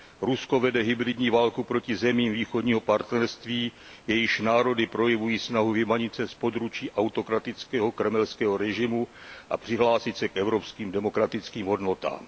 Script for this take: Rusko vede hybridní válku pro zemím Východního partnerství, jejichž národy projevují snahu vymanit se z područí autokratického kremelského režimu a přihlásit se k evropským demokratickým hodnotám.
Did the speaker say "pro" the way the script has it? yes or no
no